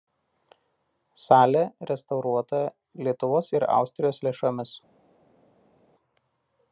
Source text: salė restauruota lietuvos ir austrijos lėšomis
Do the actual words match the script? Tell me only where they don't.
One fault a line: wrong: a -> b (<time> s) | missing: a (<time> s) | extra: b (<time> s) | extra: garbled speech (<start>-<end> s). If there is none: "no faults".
no faults